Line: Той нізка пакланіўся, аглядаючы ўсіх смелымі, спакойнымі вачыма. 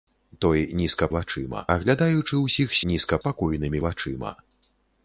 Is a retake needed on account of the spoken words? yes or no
yes